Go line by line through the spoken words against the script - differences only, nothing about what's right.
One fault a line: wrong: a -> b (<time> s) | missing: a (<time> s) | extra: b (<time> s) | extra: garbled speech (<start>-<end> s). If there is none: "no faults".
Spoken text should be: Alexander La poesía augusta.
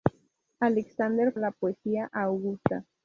no faults